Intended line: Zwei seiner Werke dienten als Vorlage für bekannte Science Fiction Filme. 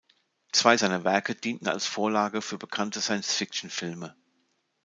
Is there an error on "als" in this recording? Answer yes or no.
no